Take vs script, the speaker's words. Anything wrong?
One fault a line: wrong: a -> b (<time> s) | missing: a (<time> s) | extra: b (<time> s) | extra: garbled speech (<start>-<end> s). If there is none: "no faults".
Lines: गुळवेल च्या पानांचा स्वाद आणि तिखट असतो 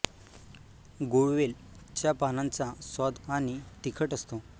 no faults